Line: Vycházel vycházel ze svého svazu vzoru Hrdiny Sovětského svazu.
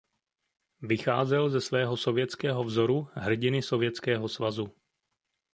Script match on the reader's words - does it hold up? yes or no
no